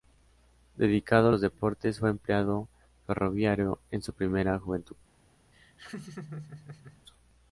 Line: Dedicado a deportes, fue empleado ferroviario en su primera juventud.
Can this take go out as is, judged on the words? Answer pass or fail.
fail